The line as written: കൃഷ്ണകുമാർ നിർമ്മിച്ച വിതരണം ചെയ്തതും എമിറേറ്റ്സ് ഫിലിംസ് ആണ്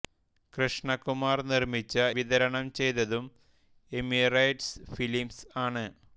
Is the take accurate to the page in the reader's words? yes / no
yes